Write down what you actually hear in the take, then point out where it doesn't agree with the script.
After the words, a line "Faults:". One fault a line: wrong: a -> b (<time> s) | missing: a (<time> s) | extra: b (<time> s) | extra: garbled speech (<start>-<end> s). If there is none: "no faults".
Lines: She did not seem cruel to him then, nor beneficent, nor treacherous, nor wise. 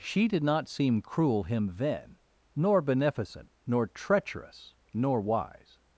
She did not seem cruel him then, nor beneficent, nor treacherous, nor wise.
Faults:
missing: to (1.4 s)